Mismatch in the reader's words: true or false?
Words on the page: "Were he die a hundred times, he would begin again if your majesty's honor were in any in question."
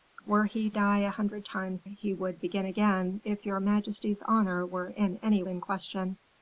false